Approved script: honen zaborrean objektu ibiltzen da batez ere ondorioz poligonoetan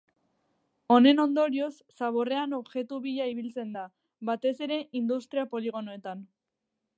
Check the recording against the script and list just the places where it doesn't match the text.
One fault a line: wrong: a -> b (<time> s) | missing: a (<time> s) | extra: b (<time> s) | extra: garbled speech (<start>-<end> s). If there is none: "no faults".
extra: ondorioz (1.2 s)
extra: bila (3.0 s)
wrong: ondorioz -> industria (5.0 s)